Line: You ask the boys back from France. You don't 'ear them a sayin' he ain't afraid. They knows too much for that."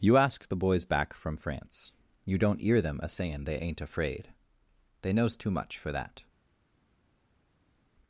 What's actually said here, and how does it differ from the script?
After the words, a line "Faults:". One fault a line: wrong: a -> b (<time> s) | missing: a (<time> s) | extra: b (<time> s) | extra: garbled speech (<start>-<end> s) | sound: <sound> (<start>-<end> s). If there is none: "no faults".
You ask the boys back from France. You don't 'ear them a sayin' they ain't afraid. They knows too much for that."
Faults:
wrong: he -> they (3.4 s)